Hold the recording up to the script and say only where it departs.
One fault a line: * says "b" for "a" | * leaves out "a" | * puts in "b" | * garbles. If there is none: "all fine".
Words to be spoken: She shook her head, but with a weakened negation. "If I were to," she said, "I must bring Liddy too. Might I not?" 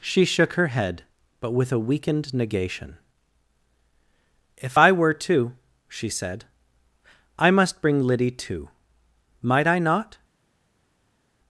all fine